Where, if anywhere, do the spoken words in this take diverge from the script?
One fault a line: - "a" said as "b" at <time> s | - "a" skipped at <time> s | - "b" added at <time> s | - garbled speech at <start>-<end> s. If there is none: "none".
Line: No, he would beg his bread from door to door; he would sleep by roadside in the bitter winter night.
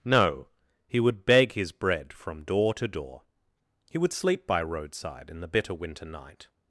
none